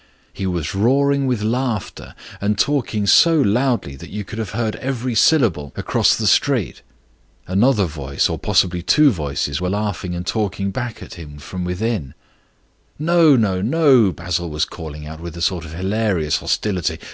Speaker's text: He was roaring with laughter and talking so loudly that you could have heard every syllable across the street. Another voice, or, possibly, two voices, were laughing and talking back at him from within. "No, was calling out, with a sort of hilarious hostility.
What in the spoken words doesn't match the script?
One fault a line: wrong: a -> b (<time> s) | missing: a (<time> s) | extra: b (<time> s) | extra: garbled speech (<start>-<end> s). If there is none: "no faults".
extra: no no Basil (13.4 s)